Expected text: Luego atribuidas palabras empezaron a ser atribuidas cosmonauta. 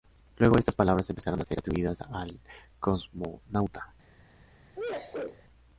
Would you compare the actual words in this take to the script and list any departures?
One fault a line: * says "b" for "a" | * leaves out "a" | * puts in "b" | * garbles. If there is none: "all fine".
* says "estas" for "atribuidas"
* puts in "al"